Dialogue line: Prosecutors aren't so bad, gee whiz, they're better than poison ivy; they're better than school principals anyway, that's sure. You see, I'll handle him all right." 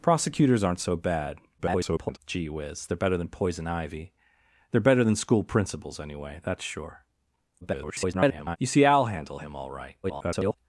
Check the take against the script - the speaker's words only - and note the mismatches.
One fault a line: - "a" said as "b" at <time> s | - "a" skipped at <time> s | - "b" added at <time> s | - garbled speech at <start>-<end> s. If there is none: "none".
- garbled speech at 1.6-2.2 s
- garbled speech at 7.6-8.6 s
- garbled speech at 10.0-10.6 s